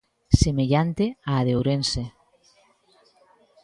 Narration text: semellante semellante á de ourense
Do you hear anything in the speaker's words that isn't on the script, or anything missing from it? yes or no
yes